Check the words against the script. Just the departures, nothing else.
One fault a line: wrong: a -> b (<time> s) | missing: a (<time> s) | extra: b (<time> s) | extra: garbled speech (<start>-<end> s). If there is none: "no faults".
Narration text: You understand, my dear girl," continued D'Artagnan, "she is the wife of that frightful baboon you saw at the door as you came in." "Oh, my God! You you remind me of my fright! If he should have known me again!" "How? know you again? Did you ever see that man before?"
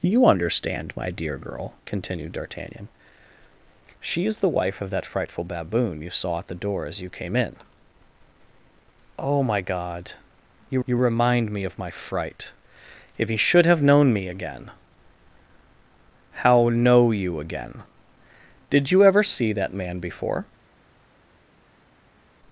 no faults